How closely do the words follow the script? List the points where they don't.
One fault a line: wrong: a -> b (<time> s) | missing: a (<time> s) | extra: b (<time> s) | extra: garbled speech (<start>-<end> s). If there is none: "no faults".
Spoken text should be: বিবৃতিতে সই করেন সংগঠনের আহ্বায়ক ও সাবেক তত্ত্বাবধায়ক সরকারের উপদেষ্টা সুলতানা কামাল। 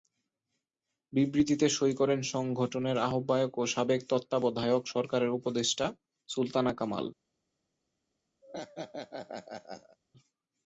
no faults